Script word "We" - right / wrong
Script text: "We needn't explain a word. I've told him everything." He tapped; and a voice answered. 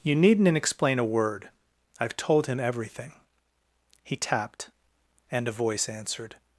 wrong